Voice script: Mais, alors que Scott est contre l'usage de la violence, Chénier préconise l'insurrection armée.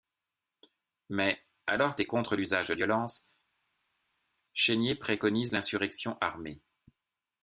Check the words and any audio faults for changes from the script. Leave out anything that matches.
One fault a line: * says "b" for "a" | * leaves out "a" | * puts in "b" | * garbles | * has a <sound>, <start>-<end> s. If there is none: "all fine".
* leaves out "que Scott"
* leaves out "la"